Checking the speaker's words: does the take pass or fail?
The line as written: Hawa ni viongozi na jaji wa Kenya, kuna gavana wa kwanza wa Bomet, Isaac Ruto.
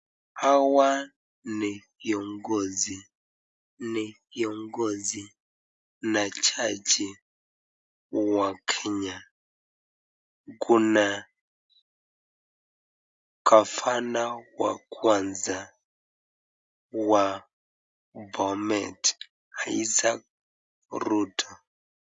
fail